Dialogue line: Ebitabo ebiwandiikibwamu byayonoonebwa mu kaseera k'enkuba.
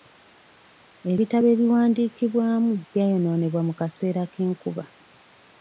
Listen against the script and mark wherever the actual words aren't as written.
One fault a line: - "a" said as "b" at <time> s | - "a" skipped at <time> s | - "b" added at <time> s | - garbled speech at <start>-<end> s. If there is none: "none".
none